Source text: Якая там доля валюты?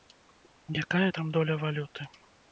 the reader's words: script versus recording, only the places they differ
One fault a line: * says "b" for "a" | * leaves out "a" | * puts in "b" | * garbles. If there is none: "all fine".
all fine